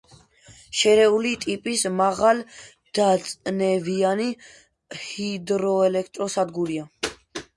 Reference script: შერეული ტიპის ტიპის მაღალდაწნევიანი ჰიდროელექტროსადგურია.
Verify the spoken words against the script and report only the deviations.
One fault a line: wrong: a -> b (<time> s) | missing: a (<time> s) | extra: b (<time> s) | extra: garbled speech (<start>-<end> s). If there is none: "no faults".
missing: ტიპის (1.8 s)